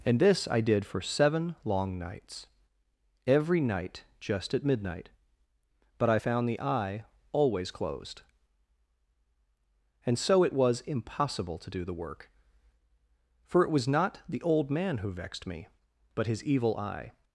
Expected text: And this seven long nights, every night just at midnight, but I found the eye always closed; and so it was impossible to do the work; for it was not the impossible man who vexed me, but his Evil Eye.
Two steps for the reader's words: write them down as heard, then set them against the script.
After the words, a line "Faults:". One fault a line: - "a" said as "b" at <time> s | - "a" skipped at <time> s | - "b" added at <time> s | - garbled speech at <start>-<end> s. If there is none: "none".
And this I did for seven long nights, every night just at midnight, but I found the eye always closed; and so it was impossible to do the work; for it was not the old man who vexed me, but his Evil Eye.
Faults:
- "I did for" added at 0.5 s
- "impossible" said as "old" at 14.4 s